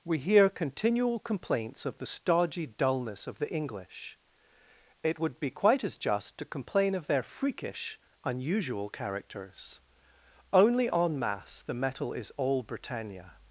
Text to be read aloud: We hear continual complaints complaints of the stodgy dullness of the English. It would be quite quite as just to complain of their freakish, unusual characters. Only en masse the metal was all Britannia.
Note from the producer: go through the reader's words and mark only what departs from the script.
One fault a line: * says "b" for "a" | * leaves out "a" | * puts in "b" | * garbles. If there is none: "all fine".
* leaves out "complaints"
* leaves out "quite"
* says "is" for "was"